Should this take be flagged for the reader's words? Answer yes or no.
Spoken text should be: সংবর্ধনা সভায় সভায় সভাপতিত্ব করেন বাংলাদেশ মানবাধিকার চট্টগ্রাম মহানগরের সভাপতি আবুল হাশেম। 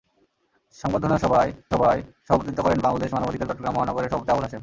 no